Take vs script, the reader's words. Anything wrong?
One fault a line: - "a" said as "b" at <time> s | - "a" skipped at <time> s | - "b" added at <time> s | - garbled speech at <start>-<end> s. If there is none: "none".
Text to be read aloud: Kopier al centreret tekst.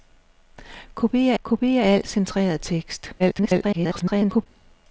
- "kopier" added at 1.4 s
- garbled speech at 3.2-4.5 s